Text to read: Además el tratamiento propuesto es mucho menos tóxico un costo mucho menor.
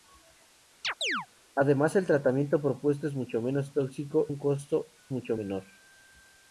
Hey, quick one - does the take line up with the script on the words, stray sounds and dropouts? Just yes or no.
no